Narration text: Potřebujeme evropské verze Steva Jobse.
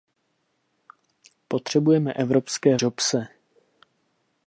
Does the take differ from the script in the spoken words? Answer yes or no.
yes